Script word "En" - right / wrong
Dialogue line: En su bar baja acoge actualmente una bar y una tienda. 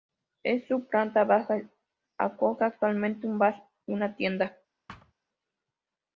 right